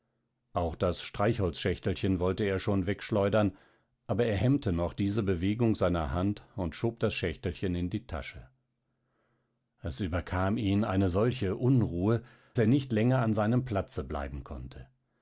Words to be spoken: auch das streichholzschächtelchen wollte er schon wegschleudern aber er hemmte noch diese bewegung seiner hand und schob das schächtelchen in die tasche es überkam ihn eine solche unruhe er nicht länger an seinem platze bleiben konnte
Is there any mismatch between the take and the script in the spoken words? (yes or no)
no